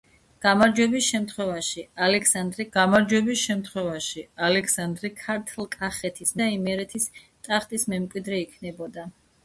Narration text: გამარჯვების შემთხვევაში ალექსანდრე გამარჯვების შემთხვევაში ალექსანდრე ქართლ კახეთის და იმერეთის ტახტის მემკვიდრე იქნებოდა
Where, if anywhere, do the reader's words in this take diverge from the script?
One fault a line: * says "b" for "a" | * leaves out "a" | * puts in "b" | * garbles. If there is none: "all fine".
all fine